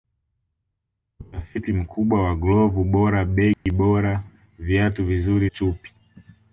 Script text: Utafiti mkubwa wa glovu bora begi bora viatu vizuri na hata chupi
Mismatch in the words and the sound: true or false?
true